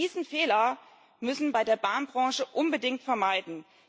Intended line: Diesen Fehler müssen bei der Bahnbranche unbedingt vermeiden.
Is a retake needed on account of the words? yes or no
no